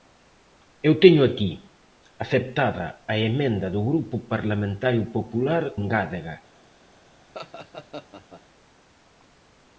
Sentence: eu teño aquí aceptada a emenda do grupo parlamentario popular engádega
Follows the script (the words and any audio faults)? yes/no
no